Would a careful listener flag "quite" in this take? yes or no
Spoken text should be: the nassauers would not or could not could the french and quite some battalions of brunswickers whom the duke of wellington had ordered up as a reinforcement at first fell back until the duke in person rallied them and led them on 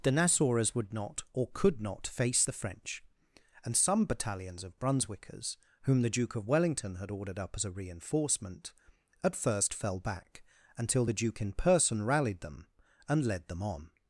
yes